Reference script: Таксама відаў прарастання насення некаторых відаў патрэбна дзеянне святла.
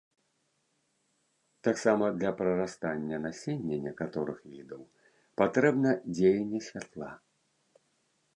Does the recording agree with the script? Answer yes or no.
no